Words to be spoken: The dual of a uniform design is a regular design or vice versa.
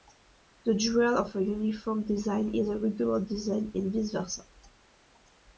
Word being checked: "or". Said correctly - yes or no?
no